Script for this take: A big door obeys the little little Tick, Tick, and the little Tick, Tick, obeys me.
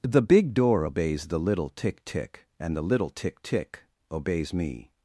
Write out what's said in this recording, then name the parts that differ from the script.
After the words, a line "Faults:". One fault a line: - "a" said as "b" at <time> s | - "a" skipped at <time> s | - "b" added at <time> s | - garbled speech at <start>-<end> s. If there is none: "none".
The big door obeys the little Tick, Tick, and the little Tick, Tick, obeys me.
Faults:
- "A" said as "The" at 0.0 s
- "little" skipped at 1.7 s